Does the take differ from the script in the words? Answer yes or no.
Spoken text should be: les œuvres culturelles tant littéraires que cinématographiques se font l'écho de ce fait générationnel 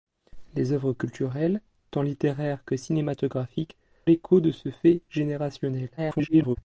yes